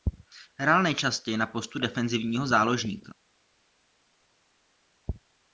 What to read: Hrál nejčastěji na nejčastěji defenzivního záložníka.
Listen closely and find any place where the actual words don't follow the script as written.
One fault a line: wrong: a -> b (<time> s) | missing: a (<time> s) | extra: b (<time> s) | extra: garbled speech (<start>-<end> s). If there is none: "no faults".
wrong: nejčastěji -> postu (1.5 s)